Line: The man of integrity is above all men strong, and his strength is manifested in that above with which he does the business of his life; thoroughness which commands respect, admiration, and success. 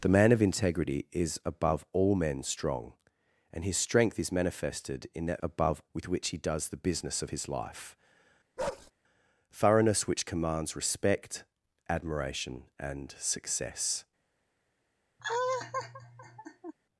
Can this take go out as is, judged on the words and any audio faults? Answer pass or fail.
fail